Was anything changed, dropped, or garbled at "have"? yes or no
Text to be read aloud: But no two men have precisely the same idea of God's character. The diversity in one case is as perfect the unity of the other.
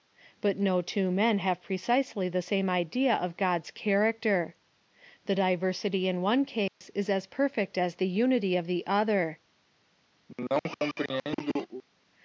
no